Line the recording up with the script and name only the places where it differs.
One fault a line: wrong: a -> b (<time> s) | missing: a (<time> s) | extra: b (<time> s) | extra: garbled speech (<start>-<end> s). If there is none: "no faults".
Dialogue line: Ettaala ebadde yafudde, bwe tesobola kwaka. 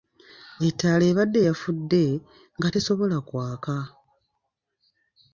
wrong: bwe -> nga (2.6 s)